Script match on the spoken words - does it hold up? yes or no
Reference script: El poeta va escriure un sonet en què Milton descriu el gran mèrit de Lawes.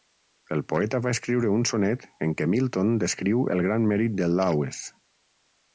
yes